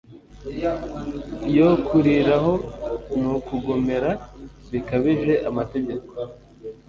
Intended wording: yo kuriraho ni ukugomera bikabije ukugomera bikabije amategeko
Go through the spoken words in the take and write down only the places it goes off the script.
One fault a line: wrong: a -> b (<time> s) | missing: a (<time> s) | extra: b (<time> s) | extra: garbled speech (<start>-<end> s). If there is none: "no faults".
missing: ukugomera bikabije (5.3 s)